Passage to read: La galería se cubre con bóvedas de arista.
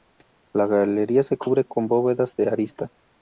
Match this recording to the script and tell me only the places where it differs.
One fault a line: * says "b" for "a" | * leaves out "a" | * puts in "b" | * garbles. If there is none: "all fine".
all fine